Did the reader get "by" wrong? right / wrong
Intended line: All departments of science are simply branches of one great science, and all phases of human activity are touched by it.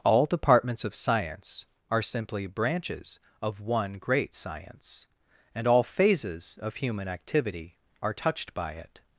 right